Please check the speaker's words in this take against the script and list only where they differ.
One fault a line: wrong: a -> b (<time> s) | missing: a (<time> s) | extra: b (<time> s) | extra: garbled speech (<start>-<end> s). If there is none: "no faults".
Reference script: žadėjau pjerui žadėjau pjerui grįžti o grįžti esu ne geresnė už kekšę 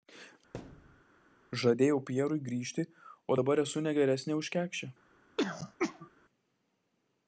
missing: žadėjau pjerui (2.4 s)
wrong: grįžti -> dabar (3.4 s)